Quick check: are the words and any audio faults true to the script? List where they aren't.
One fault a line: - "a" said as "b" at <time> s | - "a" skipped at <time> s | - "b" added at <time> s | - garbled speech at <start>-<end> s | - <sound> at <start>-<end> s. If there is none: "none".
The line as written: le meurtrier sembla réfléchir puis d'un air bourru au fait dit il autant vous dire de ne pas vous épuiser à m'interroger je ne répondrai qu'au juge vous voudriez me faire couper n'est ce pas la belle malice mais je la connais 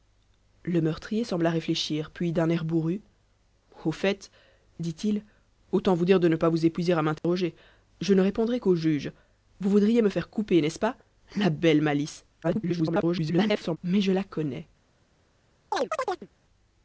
- dropout at 7.2-7.2 s
- garbled speech at 12.4-13.8 s
- chirp at 15.7-16.3 s